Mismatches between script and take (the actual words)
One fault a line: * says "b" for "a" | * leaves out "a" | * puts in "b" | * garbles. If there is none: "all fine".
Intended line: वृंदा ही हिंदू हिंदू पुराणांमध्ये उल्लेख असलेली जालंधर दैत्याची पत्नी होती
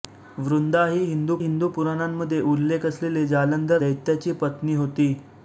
all fine